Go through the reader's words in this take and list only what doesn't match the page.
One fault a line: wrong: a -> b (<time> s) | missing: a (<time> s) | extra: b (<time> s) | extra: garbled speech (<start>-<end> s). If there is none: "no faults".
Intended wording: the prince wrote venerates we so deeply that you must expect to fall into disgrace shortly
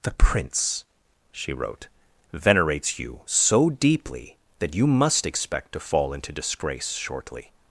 extra: she (1.3 s)
wrong: we -> you (3.0 s)